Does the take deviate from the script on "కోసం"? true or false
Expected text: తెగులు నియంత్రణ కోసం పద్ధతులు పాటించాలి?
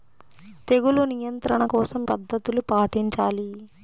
false